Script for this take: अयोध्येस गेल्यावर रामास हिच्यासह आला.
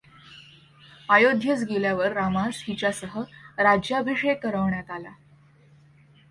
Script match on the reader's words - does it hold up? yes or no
no